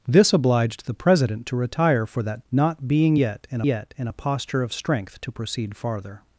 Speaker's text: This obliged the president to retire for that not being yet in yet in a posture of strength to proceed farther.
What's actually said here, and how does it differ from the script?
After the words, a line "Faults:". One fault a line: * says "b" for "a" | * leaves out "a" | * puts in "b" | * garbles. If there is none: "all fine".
This obliged the president to retire for that not being yet in yet in a posture of strength to proceed farther.
Faults:
all fine